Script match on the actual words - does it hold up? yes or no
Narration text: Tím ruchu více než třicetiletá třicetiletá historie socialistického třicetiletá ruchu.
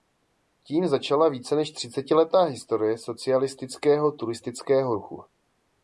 no